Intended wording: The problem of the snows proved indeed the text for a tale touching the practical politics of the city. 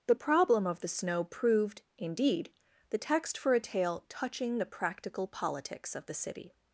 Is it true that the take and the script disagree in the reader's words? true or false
true